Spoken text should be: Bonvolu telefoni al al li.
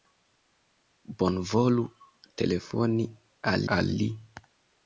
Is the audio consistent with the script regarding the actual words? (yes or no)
yes